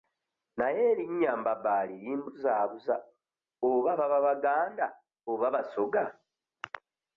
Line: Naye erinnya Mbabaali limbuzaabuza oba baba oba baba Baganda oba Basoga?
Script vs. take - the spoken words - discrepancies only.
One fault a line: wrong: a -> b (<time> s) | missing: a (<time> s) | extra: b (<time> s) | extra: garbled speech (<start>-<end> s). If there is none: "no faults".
missing: oba baba (4.2 s)